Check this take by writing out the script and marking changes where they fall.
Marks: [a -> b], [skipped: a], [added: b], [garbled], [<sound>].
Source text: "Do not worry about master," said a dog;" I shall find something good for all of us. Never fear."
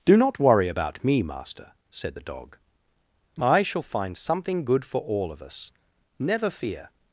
"Do not worry about [added: me] master," said [a -> the] dog;" I shall find something good for all of us. Never fear."